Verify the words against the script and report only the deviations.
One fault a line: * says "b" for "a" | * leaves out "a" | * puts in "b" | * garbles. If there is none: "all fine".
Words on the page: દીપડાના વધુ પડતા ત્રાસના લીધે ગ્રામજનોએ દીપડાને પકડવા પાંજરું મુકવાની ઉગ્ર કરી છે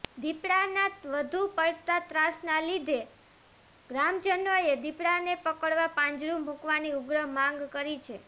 * puts in "માંગ"